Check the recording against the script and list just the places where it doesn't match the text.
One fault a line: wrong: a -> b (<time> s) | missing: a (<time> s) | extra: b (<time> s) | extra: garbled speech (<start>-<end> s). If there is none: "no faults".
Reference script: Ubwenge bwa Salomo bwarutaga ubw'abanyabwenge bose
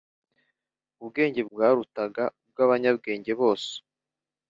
missing: bwa Salomo (1.4 s)